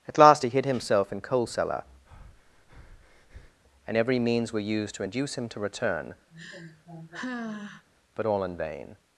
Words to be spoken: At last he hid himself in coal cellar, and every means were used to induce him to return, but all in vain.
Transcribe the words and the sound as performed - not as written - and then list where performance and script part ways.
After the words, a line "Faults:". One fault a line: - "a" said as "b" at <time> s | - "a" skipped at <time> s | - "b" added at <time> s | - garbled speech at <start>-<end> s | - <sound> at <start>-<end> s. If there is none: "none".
At last he hid himself in coal cellar, and every means were used to induce him to return, but all in vain.
Faults:
- breath at 2.1-3.6 s
- sigh at 6.3-7.9 s